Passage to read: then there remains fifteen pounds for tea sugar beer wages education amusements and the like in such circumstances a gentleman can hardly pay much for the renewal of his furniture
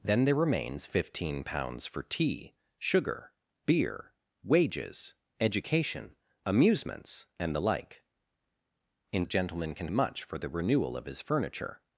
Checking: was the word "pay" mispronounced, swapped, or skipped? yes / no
yes